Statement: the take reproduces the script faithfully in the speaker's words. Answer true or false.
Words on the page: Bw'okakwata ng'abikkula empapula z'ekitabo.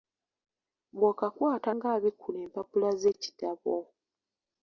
true